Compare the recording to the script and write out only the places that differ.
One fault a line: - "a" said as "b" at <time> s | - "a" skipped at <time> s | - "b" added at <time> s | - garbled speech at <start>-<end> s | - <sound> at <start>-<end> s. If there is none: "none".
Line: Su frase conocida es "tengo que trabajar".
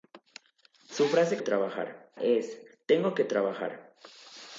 - "conocida" said as "trabajar" at 1.4 s